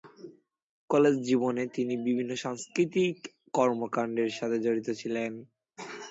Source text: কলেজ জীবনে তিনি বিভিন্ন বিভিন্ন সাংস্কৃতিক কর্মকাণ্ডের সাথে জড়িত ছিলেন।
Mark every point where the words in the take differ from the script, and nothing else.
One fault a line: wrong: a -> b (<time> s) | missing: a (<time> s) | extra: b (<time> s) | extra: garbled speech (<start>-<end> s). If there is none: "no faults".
missing: বিভিন্ন (2.3 s)